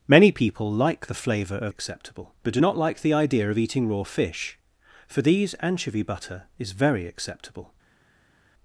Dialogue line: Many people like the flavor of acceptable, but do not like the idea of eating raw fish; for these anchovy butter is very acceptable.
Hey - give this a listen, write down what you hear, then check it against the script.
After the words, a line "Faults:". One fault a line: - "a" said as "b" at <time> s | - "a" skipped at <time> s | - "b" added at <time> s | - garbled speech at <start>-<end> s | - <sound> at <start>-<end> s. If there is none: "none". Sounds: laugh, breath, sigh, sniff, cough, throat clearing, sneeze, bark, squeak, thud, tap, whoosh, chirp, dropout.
Many people like the flavor of acceptable, but do not like the idea of eating raw fish; for these anchovy butter is very acceptable.
Faults:
none